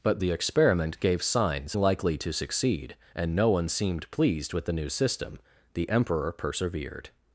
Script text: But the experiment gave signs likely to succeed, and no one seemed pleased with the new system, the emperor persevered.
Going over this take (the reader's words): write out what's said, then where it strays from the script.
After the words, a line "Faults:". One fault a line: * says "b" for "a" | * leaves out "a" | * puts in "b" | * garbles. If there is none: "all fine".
But the experiment gave signs likely to succeed, and no one seemed pleased with the new system, the emperor persevered.
Faults:
all fine